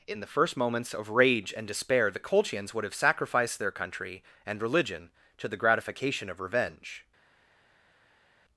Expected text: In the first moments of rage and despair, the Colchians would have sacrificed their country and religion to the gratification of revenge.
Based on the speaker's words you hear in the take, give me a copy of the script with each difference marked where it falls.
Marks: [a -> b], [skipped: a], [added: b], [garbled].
In the first moments of rage and despair, the Colchians would have sacrificed their country and religion to the gratification of revenge.